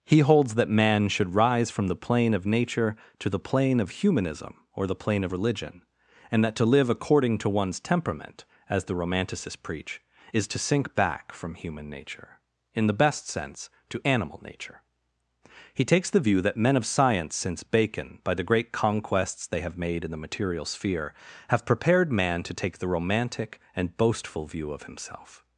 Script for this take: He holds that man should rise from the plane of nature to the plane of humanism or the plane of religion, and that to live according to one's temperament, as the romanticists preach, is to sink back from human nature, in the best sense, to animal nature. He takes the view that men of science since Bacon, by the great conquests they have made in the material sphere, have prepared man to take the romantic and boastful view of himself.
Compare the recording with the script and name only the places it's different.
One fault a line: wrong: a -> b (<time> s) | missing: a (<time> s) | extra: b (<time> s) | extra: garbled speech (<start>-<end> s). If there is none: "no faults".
no faults